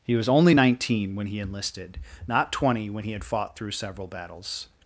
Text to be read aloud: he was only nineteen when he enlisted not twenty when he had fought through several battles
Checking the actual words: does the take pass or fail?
pass